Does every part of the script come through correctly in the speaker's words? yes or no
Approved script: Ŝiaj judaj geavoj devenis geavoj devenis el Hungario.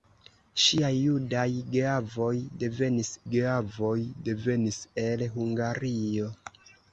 yes